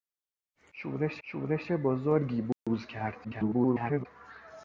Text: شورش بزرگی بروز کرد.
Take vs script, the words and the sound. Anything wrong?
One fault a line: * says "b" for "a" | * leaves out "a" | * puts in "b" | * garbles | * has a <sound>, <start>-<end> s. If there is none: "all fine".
* puts in "شورش"
* has a dropout, 2.5-2.7 s
* garbles